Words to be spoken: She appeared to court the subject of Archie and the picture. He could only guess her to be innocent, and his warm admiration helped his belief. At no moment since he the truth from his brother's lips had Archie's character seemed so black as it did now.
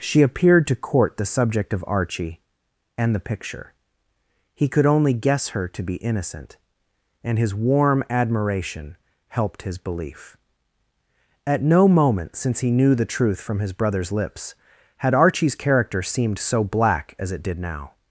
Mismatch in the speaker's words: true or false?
true